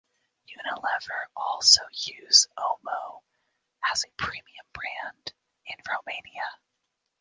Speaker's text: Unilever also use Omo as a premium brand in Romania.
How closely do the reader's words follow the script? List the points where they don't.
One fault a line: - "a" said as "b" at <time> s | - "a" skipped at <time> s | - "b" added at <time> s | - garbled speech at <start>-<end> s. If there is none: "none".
none